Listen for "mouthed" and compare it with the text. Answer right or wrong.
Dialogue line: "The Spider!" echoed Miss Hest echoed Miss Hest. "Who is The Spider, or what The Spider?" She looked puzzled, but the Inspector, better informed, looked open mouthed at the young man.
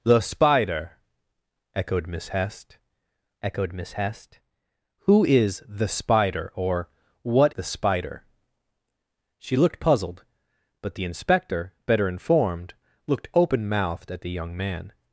right